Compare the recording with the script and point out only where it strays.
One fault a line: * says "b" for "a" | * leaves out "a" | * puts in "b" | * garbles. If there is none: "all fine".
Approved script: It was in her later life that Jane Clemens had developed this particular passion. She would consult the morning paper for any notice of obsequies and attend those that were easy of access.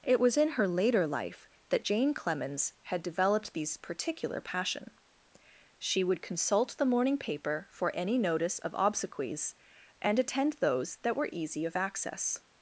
* says "these" for "this"